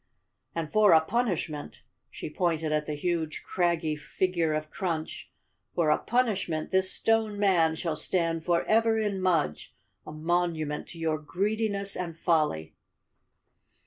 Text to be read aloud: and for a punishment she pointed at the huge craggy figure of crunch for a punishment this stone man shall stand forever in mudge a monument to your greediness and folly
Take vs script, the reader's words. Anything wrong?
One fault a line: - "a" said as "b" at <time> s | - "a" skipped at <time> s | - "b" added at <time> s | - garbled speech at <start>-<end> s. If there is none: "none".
none